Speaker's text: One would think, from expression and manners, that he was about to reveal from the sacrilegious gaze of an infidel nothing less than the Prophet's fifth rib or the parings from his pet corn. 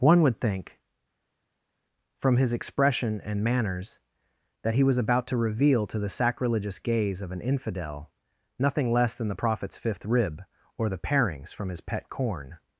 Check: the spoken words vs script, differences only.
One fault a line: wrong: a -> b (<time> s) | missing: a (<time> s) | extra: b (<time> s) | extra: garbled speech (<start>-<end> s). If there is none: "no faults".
extra: his (2.3 s)
wrong: from -> to (5.9 s)